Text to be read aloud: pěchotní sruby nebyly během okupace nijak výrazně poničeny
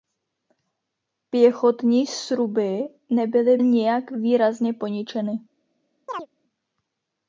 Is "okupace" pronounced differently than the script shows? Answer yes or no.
yes